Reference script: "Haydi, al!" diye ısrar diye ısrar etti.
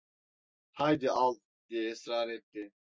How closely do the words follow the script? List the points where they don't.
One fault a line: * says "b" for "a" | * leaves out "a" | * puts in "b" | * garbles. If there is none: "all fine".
* leaves out "diye ısrar"